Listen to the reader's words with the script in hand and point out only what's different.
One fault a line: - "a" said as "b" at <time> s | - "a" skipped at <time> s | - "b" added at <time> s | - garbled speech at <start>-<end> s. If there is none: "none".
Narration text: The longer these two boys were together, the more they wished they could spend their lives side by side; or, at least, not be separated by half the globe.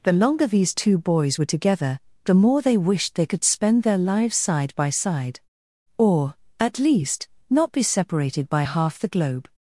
none